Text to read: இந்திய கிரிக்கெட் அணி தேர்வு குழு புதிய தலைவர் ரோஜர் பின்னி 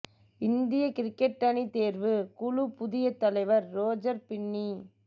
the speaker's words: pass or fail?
pass